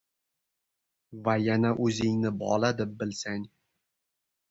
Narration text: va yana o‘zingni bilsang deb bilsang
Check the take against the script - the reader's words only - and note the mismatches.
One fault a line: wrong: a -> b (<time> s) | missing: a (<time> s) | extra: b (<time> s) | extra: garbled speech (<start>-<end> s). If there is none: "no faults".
wrong: bilsang -> bola (2.5 s)